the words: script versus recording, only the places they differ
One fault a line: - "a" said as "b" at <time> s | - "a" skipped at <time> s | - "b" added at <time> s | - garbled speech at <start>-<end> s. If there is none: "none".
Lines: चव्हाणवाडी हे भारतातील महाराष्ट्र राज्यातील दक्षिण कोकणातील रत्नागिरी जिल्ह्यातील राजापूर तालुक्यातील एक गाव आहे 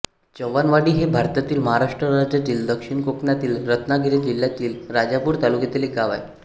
none